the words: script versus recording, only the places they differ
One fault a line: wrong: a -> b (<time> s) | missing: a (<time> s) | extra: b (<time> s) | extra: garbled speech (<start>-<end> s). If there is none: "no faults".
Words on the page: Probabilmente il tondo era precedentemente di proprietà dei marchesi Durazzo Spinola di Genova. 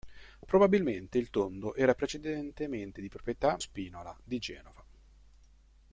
missing: dei marchesi Durazzo (3.6 s)